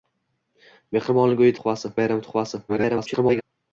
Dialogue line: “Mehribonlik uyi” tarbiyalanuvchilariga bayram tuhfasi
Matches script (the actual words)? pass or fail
fail